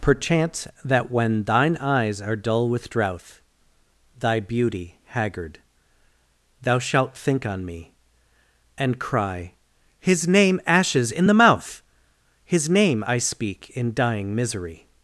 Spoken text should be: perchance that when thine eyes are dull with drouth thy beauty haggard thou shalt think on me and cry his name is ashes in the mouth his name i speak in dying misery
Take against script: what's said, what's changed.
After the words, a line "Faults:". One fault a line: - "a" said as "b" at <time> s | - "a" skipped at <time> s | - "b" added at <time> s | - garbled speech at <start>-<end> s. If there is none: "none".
perchance that when thine eyes are dull with drouth thy beauty haggard thou shalt think on me and cry his name ashes in the mouth his name i speak in dying misery
Faults:
- "is" skipped at 10.6 s